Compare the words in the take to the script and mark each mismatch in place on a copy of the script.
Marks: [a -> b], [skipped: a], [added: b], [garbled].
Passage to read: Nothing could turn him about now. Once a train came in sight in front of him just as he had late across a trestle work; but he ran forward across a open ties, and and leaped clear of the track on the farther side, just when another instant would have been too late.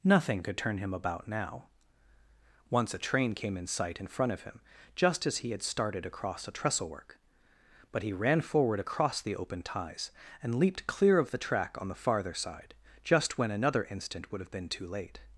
Nothing could turn him about now. Once a train came in sight in front of him just as he had [late -> started] across a trestle work; but he ran forward across [a -> the] open ties, and [skipped: and] leaped clear of the track on the farther side, just when another instant would have been too late.